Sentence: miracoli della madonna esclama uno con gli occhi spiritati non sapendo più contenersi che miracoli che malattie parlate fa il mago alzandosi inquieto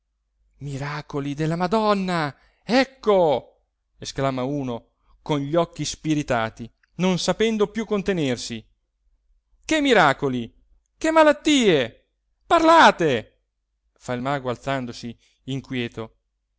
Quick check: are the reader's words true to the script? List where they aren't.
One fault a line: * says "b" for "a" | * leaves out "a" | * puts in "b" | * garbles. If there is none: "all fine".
* puts in "ecco"